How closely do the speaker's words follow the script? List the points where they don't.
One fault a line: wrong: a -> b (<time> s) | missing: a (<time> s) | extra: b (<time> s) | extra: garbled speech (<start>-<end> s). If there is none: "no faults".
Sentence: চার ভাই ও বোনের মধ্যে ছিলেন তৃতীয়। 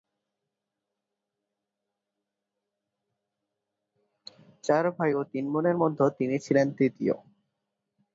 extra: তিন (5.3 s)
extra: তিনি (6.2 s)